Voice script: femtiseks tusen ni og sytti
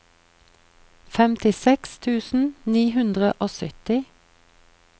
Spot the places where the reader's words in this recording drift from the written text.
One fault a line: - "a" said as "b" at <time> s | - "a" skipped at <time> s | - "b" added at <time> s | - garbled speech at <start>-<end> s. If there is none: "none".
- "hundre" added at 3.0 s